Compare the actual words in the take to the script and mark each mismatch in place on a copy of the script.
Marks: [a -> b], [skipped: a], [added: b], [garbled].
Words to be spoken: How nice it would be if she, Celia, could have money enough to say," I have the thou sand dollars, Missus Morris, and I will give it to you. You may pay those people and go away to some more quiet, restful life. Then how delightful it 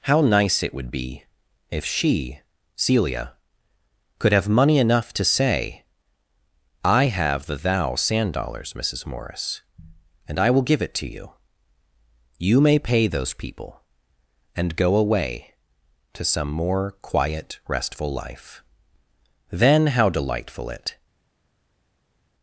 How nice it would be if she, Celia, could have money enough to say," I have the thou sand dollars, Missus Morris, and I will give it to you. You may pay those people and go away to some more quiet, restful life. Then how delightful it